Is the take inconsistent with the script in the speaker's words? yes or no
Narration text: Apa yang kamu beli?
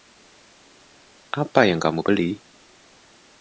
no